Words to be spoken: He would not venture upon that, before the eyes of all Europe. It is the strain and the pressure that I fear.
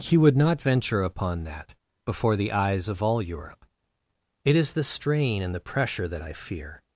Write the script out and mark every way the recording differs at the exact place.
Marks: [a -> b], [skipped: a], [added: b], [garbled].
He would not venture upon that, before the eyes of all Europe. It is the strain and the pressure that I fear.